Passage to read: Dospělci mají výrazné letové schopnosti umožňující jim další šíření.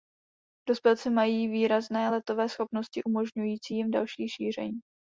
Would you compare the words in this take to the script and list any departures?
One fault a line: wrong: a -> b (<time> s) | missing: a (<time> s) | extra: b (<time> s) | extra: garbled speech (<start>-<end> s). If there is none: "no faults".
no faults